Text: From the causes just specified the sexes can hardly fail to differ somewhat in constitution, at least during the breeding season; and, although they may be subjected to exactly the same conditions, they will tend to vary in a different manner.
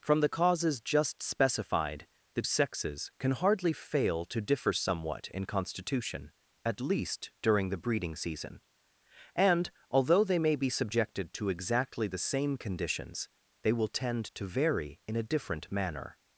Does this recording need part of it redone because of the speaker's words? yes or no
no